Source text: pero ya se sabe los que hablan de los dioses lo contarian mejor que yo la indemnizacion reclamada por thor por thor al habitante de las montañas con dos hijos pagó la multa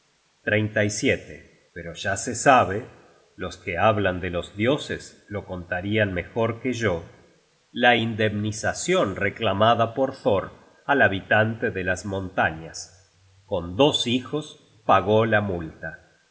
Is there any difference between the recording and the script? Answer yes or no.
yes